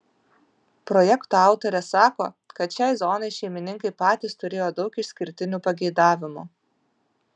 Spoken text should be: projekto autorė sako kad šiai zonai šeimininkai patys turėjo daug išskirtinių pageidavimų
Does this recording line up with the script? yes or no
yes